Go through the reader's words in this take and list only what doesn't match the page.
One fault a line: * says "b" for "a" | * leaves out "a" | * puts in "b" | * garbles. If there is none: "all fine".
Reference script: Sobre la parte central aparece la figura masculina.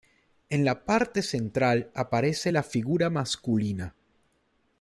* says "En" for "Sobre"